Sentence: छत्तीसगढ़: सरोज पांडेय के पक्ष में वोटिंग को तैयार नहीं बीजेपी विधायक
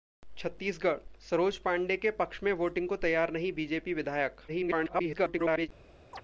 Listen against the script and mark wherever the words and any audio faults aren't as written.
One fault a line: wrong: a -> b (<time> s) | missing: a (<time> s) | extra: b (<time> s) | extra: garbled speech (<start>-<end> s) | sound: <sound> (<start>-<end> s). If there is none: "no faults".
extra: garbled speech (4.5-5.7 s)
sound: chirp (6.1-6.2 s)